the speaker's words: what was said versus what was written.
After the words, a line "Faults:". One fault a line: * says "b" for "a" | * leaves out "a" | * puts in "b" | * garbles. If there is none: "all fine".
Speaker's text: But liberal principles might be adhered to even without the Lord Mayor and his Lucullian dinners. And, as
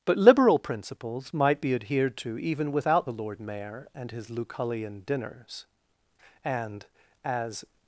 But liberal principles might be adhered to even without the Lord Mayor and his Lucullian dinners. And, as
Faults:
all fine